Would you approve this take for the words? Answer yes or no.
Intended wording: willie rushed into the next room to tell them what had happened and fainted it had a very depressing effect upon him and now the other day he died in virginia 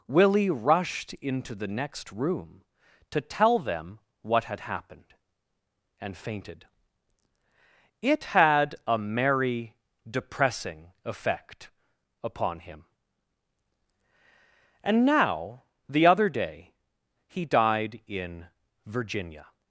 no